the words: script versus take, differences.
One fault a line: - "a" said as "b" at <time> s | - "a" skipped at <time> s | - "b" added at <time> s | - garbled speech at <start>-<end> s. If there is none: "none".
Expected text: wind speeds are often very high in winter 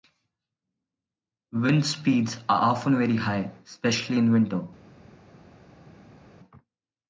- "especially" added at 3.6 s